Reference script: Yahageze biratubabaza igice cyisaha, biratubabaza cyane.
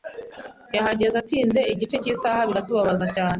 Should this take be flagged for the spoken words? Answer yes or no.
yes